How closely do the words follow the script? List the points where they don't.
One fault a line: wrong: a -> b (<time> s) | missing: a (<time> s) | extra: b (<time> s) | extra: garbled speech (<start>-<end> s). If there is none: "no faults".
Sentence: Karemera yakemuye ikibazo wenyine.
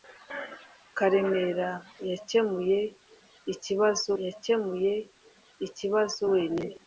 extra: yakemuye ikibazo (4.2 s)